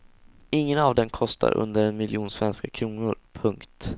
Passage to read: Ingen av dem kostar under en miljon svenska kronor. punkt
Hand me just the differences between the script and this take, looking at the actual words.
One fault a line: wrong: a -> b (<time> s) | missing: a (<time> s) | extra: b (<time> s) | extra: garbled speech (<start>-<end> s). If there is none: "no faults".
no faults